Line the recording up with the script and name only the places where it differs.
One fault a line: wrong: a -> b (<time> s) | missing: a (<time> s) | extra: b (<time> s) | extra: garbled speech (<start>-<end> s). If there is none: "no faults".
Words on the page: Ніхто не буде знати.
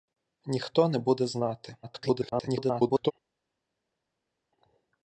extra: garbled speech (1.8-3.1 s)